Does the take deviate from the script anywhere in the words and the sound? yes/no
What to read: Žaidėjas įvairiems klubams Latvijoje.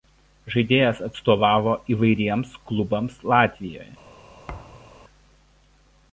yes